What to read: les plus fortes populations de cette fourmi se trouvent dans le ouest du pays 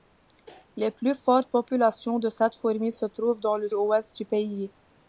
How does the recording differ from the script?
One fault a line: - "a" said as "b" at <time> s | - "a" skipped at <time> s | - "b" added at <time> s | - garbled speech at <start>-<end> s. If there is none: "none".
none